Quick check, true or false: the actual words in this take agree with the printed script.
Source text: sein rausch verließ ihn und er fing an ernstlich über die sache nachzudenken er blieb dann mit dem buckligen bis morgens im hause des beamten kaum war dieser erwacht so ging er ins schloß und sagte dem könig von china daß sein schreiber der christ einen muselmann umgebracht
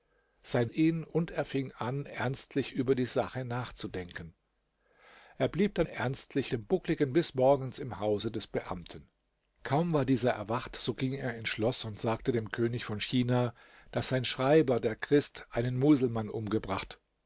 false